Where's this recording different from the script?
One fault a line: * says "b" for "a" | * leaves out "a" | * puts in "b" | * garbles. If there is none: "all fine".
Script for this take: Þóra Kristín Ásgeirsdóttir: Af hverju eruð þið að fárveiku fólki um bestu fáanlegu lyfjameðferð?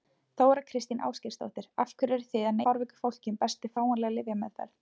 all fine